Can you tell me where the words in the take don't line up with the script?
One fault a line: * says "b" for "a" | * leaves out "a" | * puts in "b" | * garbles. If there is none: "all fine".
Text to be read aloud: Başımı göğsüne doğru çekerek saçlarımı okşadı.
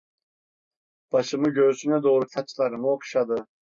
* leaves out "çekerek"